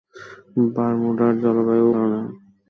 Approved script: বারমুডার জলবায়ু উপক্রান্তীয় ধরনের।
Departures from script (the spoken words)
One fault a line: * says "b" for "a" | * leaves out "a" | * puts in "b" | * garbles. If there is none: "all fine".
* leaves out "উপক্রান্তীয়"